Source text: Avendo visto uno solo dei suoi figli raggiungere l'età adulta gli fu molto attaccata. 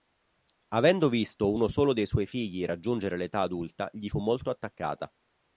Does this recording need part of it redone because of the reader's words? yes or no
no